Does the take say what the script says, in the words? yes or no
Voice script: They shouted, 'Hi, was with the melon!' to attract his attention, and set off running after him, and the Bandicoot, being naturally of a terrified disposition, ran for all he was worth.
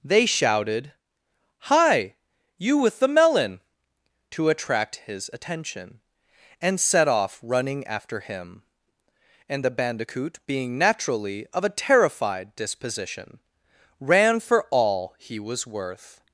no